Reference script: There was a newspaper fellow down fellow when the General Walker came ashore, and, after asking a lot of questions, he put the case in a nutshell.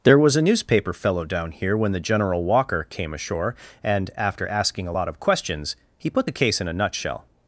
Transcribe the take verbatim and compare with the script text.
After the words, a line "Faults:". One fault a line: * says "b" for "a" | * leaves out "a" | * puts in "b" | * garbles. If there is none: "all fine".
There was a newspaper fellow down here when the General Walker came ashore, and, after asking a lot of questions, he put the case in a nutshell.
Faults:
* says "here" for "fellow"